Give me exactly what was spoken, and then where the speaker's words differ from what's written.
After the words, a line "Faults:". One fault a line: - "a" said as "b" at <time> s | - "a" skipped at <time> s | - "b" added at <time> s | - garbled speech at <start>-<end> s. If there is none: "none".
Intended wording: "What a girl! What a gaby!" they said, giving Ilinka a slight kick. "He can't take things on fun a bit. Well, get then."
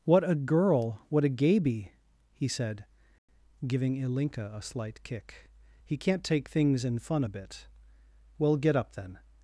"What a girl! What a gaby!" he said, giving Ilinka a slight kick. "He can't take things in fun a bit. Well, get up, then."
Faults:
- "they" said as "he" at 2.3 s
- "on" said as "in" at 6.8 s
- "up" added at 8.7 s